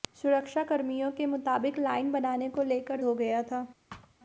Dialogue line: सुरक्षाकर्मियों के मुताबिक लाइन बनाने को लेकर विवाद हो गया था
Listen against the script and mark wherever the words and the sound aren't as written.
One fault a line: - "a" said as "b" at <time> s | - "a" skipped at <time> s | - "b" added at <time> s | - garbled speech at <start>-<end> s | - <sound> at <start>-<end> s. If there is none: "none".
- "विवाद" skipped at 3.0 s
- thud at 3.9-4.1 s